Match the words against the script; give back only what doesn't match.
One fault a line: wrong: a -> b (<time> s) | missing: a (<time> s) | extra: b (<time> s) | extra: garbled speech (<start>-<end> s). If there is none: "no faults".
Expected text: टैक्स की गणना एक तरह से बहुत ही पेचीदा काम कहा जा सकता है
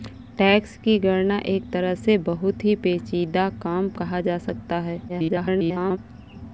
extra: garbled speech (5.1-6.0 s)